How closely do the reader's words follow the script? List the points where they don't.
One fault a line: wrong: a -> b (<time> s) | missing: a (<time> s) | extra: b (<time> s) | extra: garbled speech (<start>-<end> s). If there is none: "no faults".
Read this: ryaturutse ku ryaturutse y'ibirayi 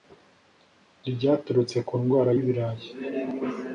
wrong: ryaturutse -> ndwara (2.0 s)